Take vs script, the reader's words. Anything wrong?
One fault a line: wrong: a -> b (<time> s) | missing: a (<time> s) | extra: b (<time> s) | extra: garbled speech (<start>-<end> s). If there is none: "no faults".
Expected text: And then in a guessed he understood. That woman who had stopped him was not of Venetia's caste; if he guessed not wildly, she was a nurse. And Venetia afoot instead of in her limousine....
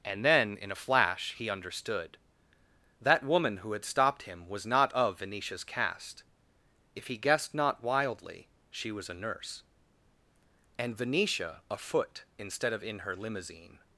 wrong: guessed -> flash (0.8 s)